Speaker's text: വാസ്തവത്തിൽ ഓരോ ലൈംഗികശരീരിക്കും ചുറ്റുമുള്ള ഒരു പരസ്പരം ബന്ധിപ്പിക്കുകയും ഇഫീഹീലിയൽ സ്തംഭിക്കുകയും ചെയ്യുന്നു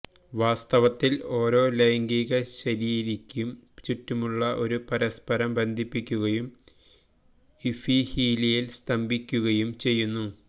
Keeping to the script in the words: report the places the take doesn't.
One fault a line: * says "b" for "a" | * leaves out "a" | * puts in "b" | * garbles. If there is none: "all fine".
all fine